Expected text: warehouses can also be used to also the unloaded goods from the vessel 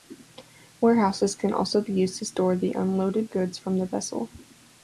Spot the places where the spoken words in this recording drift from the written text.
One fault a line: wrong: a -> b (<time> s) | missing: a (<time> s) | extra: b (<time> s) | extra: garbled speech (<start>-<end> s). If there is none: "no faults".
wrong: also -> store (2.2 s)